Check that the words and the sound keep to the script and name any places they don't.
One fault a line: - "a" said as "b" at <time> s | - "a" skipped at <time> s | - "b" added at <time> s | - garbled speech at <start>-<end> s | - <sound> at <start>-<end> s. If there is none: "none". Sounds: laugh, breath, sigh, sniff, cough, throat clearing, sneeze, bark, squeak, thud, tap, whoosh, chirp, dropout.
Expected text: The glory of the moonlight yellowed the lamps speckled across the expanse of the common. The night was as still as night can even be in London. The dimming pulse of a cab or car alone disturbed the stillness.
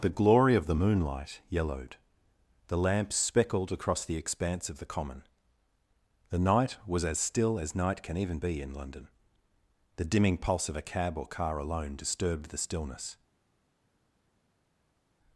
none